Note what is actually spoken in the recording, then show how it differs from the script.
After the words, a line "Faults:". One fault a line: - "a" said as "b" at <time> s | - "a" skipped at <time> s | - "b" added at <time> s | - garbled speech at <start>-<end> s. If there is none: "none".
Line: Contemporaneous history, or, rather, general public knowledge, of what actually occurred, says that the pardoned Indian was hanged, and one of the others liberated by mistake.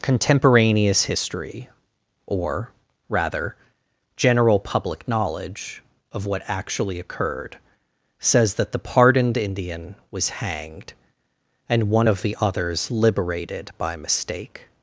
Contemporaneous history, or, rather, general public knowledge, of what actually occurred, says that the pardoned Indian was hanged, and one of the others liberated by mistake.
Faults:
none